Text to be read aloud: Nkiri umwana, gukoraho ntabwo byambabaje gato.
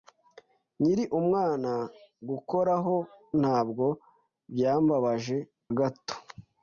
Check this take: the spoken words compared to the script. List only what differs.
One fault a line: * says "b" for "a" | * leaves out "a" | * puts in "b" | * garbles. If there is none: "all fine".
all fine